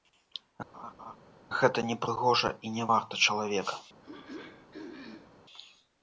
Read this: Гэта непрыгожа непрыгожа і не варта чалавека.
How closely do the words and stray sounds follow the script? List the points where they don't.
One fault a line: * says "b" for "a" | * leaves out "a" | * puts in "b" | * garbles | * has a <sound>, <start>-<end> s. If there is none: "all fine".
* has a laugh, 0.7-1.2 s
* leaves out "непрыгожа"
* has a throat clearing, 4.0-5.4 s